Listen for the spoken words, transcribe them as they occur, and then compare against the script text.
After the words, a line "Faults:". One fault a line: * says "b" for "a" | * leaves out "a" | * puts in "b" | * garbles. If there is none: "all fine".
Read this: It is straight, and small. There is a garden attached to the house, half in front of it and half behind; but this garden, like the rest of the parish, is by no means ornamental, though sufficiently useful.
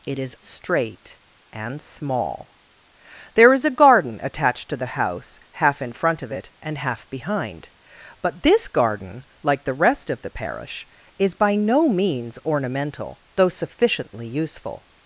It is straight, and small. There is a garden attached to the house, half in front of it and half behind; but this garden, like the rest of the parish, is by no means ornamental, though sufficiently useful.
Faults:
all fine